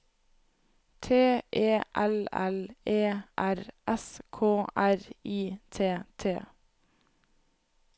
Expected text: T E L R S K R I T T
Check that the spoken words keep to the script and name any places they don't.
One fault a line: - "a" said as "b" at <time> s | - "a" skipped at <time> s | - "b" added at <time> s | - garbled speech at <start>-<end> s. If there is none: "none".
- "L E" added at 2.3 s